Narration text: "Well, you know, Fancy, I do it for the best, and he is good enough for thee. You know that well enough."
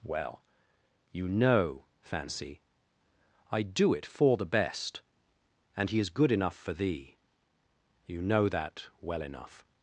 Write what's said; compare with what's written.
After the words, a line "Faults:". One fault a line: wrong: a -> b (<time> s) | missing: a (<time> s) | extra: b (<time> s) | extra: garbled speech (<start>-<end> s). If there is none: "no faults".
"Well, you know, Fancy, I do it for the best, and he is good enough for thee. You know that well enough."
Faults:
no faults